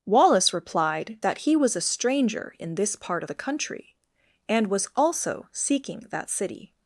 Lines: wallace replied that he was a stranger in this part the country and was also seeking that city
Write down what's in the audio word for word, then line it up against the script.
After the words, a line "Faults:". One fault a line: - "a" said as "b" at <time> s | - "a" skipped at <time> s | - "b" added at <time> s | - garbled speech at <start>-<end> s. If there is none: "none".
wallace replied that he was a stranger in this part the country and was also seeking that city
Faults:
none